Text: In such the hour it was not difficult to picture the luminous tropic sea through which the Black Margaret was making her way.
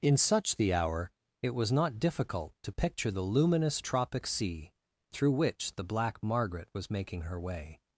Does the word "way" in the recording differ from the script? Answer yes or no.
no